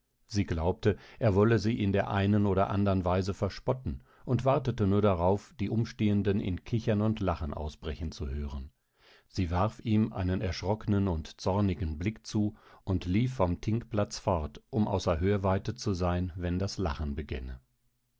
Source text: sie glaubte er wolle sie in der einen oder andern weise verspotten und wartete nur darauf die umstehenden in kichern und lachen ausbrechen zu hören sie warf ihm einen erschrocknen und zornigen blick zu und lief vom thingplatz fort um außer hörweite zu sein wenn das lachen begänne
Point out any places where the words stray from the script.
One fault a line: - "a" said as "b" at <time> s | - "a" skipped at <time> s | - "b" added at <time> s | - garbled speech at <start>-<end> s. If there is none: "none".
none